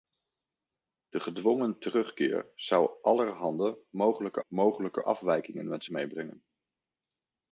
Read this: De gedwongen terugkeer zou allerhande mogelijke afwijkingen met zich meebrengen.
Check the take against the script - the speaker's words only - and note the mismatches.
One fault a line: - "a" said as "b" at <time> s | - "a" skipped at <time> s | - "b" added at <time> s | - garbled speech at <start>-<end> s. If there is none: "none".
- "mogelijke" added at 4.5 s
- "zich" skipped at 5.8 s